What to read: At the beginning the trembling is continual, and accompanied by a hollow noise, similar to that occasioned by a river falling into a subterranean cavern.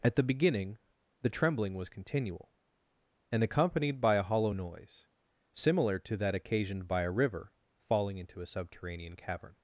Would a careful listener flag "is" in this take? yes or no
yes